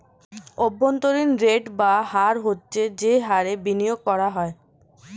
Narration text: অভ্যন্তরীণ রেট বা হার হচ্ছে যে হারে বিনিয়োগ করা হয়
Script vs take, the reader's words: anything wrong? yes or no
no